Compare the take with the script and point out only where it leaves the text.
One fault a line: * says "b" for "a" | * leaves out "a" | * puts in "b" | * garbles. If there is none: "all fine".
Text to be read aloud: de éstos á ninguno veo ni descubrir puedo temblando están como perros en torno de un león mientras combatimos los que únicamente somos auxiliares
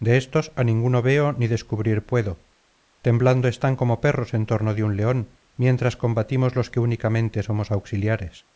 all fine